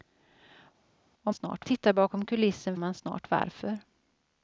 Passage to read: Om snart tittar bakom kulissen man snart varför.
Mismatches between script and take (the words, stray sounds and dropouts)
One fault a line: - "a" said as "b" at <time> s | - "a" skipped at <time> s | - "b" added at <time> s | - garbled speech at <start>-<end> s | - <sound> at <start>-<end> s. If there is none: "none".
none